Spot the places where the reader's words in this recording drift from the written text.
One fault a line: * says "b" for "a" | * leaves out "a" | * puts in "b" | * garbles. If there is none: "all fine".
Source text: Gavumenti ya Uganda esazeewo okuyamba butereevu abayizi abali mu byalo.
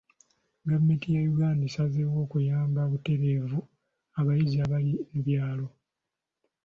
all fine